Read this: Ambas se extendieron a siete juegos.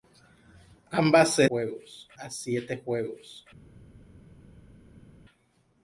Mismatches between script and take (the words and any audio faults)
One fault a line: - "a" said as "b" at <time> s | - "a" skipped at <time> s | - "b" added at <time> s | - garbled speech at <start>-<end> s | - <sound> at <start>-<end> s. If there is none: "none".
- "extendieron" said as "juegos" at 1.5 s